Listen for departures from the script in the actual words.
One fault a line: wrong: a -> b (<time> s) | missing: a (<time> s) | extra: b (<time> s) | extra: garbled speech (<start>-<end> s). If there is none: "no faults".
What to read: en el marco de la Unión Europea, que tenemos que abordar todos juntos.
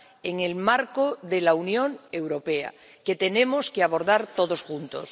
no faults